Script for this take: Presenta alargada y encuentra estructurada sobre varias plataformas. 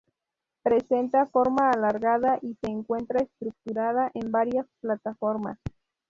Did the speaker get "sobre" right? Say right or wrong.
wrong